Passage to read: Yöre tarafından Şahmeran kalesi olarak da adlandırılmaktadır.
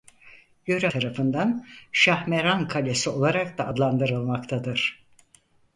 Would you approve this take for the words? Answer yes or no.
yes